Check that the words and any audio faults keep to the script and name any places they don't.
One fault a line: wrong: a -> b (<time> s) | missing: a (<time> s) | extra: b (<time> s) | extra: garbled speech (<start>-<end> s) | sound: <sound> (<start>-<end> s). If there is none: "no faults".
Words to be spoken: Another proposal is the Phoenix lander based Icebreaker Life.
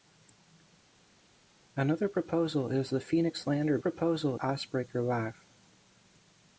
wrong: based -> proposal (3.8 s)